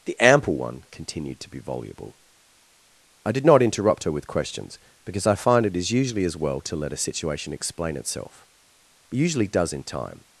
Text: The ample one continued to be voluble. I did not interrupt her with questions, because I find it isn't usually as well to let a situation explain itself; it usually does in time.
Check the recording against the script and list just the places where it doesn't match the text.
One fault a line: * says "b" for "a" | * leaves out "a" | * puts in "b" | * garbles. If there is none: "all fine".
* says "is" for "isn't"